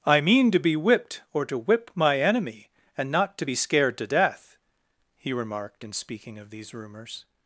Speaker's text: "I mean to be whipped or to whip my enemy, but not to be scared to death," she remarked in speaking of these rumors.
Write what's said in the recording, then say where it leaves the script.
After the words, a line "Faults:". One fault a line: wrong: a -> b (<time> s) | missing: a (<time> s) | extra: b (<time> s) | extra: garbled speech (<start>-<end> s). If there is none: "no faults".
"I mean to be whipped or to whip my enemy, and not to be scared to death," he remarked in speaking of these rumors.
Faults:
wrong: but -> and (3.0 s)
wrong: she -> he (5.2 s)